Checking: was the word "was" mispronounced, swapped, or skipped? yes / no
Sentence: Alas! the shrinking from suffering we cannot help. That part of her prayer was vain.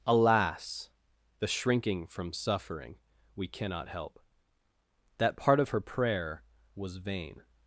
no